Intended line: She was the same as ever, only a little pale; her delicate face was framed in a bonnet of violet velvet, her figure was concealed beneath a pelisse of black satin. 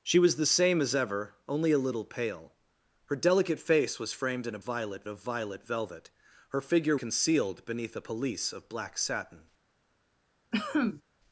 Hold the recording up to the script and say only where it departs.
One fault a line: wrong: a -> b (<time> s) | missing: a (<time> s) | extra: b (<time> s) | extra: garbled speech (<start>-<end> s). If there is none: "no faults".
wrong: bonnet -> violet (4.6 s)
missing: was (7.0 s)